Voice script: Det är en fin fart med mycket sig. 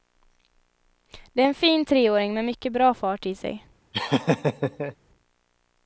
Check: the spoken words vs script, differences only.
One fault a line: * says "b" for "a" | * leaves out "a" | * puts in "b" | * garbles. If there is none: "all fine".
* says "treåring" for "fart"
* puts in "bra fart i"